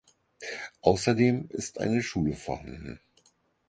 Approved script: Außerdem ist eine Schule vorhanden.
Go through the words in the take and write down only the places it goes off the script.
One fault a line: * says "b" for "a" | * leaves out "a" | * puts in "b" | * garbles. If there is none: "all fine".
all fine